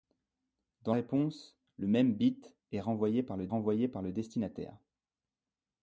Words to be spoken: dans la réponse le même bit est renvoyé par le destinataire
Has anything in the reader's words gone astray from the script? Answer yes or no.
yes